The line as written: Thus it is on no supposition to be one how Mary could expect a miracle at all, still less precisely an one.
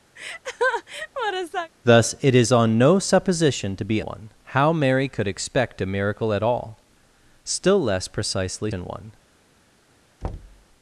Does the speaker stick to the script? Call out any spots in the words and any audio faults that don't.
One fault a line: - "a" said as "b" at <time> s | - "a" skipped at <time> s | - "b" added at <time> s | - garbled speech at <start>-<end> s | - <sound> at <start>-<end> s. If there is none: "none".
- laugh at 0.2-1.7 s
- thud at 10.2-10.7 s